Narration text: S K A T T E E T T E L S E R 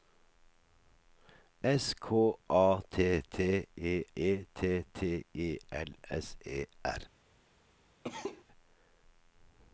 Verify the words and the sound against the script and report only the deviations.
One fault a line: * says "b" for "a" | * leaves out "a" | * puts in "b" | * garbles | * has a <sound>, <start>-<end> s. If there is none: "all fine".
* has a cough, 8.0-8.4 s